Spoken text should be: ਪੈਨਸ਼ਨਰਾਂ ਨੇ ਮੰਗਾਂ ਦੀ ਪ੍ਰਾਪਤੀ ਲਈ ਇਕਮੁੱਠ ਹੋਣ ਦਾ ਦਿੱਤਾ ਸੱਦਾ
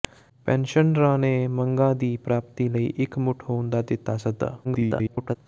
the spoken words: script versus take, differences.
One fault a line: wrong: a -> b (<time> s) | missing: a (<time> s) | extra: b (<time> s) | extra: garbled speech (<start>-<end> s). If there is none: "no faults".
extra: garbled speech (4.6-5.4 s)